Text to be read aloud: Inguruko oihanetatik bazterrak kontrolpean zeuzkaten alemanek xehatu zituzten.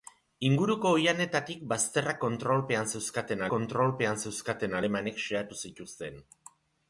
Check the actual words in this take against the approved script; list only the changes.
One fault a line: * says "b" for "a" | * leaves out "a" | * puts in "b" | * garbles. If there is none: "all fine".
* puts in "kontrolpean zeuzkaten"